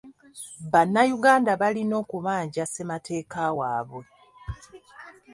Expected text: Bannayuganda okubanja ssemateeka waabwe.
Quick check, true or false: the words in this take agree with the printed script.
false